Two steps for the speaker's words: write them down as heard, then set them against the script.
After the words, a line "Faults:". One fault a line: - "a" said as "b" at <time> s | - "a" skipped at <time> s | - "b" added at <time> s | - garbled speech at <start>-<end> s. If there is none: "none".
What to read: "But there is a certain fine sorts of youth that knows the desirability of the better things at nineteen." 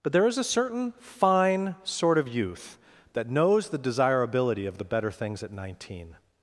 "But there is a certain fine sort of youth that knows the desirability of the better things at nineteen."
Faults:
- "sorts" said as "sort" at 1.8 s